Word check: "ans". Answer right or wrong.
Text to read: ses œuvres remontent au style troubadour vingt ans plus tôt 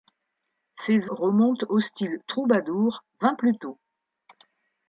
wrong